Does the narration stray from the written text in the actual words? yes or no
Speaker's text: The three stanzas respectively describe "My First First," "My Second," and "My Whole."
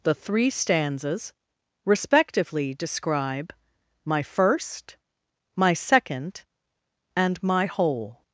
yes